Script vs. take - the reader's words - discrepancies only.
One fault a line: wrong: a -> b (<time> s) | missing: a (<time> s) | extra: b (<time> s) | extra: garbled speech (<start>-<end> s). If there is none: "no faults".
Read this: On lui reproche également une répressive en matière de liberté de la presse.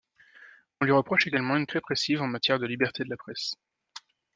no faults